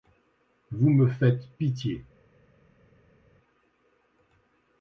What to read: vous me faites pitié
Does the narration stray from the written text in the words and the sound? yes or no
no